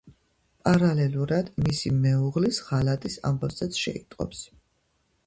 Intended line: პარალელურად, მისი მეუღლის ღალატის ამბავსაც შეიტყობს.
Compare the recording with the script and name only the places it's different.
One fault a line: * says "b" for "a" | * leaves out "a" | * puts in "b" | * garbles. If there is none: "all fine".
all fine